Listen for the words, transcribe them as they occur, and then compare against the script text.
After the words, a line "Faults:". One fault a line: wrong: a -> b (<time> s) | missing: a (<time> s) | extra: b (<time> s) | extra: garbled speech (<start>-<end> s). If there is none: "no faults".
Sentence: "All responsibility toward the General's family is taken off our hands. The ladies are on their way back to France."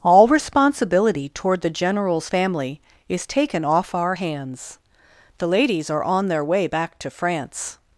"All responsibility toward the General's family is taken off our hands. The ladies are on their way back to France."
Faults:
no faults